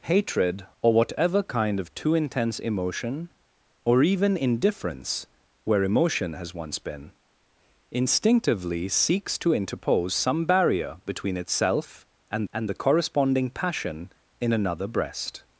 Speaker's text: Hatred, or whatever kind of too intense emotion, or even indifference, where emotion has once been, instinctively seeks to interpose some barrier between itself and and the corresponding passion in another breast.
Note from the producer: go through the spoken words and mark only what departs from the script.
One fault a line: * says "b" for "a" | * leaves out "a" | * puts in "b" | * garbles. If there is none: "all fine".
all fine